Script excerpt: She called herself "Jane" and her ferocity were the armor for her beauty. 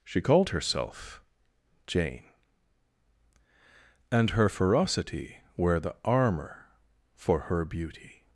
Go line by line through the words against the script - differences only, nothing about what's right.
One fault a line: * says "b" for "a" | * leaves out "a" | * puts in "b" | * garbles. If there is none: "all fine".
all fine